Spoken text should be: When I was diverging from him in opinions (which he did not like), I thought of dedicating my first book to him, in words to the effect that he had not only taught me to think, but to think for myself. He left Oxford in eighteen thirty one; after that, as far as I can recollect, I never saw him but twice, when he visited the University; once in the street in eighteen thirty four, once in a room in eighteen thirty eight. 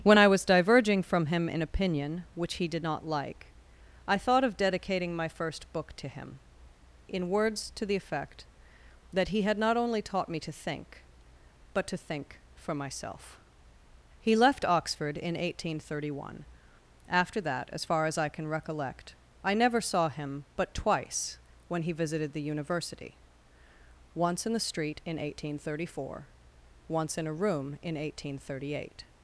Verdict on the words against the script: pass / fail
fail